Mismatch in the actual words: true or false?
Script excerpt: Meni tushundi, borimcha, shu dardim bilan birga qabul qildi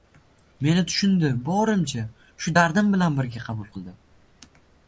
false